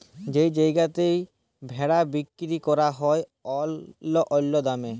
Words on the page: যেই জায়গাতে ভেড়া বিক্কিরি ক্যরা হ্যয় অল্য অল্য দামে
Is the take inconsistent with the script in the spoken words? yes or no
no